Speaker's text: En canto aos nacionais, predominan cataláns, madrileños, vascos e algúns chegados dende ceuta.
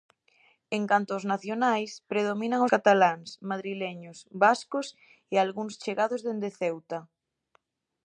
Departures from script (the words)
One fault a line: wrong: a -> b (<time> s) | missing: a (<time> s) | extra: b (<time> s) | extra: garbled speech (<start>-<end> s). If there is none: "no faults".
no faults